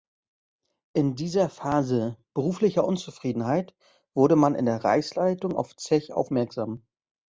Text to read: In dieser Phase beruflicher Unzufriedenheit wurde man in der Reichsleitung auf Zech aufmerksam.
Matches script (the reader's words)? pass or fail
pass